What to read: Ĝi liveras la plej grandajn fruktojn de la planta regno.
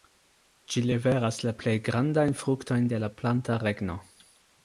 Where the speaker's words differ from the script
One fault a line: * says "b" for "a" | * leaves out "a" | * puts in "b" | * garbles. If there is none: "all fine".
all fine